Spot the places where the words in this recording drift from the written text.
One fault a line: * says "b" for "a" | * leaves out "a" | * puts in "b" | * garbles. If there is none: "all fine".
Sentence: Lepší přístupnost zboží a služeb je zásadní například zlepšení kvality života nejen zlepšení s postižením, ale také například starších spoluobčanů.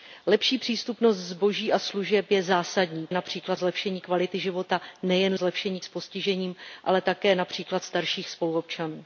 all fine